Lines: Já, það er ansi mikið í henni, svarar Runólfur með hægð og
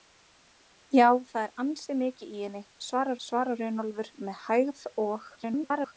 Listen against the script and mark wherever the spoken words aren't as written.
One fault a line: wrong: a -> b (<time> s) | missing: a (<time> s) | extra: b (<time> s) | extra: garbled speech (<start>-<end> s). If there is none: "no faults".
extra: svarar (3.3 s)
extra: garbled speech (5.4-5.9 s)